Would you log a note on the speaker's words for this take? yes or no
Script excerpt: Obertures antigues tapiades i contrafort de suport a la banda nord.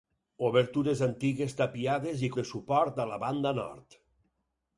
yes